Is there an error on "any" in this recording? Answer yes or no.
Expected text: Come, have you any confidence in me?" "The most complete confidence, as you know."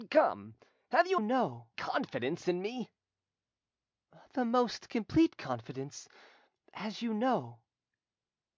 yes